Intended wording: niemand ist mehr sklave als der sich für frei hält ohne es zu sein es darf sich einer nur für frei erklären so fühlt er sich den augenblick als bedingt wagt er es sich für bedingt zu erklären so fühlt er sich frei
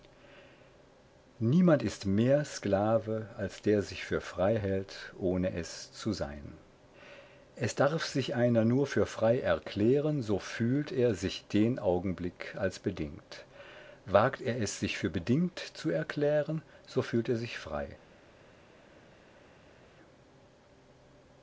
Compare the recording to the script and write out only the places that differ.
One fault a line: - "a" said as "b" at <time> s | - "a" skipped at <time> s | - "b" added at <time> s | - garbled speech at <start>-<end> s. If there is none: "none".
none